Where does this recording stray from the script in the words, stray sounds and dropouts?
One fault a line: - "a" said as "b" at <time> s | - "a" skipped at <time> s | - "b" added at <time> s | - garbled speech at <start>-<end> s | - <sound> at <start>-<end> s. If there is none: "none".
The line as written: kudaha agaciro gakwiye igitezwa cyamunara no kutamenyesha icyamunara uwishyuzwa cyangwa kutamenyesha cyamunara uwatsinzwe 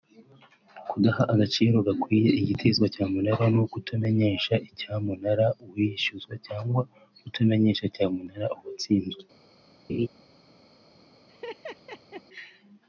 - laugh at 9.9-10.1 s
- laugh at 11.3-12.2 s